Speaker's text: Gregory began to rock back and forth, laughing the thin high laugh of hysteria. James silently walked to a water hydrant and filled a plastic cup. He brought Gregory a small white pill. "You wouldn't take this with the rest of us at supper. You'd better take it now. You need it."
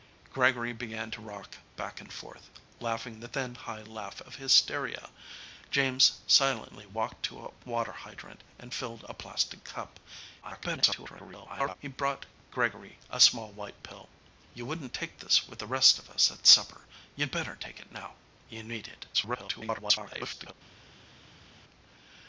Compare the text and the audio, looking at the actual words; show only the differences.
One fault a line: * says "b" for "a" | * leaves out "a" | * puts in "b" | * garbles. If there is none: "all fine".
* garbles
* garbles